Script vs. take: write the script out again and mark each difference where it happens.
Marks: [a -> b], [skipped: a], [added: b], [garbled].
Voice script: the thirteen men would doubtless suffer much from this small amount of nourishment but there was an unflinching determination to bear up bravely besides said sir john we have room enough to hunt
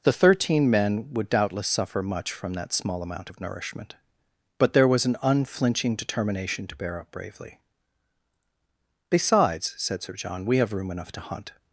the thirteen men would doubtless suffer much from [this -> that] small amount of nourishment but there was an unflinching determination to bear up bravely besides said sir john we have room enough to hunt